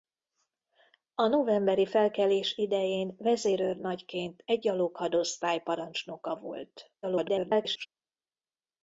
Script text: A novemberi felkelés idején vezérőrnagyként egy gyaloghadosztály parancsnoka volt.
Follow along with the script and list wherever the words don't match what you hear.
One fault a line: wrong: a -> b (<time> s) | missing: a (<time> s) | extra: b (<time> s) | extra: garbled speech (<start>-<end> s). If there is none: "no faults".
extra: garbled speech (7.0-7.9 s)